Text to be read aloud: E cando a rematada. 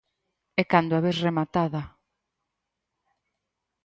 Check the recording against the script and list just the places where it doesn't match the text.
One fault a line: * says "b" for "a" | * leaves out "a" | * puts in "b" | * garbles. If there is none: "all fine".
* puts in "ves"